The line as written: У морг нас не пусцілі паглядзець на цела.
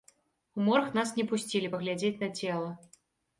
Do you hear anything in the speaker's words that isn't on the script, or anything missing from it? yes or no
no